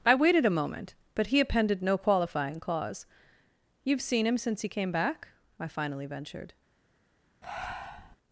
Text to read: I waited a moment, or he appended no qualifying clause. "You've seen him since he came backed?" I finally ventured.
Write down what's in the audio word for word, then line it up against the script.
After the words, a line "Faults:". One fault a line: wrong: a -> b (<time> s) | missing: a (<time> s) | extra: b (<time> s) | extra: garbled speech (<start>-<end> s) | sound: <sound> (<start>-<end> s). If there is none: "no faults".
I waited a moment, but he appended no qualifying clause. "You've seen him since he came back?" I finally ventured.
Faults:
wrong: or -> but (1.1 s)
wrong: backed -> back (4.9 s)
sound: breath (7.4-8.2 s)